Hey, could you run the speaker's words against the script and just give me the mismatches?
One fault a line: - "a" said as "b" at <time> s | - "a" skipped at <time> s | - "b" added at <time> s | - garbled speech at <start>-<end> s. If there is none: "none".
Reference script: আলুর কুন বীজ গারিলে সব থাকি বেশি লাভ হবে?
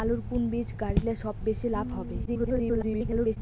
- "থাকি" skipped at 1.4 s
- garbled speech at 2.3-3.4 s